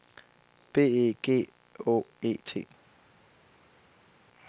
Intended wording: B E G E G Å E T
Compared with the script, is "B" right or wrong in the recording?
right